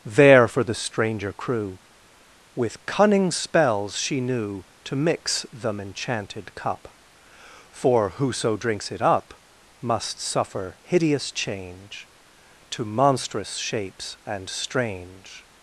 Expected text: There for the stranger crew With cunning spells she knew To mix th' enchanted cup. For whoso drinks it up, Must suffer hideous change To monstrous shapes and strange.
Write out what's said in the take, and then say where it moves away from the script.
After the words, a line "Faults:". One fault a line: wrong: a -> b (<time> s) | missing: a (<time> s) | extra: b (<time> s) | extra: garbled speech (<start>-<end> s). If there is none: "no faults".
There for the stranger crew With cunning spells she knew To mix them' enchanted cup. For whoso drinks it up, Must suffer hideous change To monstrous shapes and strange.
Faults:
wrong: th -> them (5.5 s)